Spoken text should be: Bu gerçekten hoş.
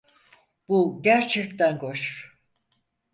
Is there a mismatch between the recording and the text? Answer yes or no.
no